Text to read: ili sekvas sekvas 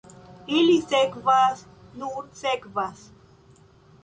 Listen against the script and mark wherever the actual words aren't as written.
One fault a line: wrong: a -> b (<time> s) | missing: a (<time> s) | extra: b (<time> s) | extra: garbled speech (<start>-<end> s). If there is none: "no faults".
extra: nur (2.0 s)